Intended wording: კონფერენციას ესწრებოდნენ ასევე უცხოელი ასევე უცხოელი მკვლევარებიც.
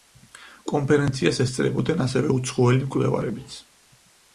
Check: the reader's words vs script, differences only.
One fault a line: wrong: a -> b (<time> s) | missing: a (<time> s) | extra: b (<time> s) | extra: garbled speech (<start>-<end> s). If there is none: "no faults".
missing: ასევე უცხოელი (2.9 s)